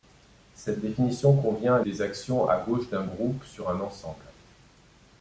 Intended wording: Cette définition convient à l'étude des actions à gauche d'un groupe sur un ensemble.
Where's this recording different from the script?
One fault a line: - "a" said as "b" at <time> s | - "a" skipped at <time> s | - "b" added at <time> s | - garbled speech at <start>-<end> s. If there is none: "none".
- "l'étude" skipped at 1.8 s